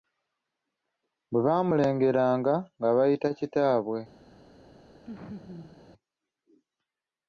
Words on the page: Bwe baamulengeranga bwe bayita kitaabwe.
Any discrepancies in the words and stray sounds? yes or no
yes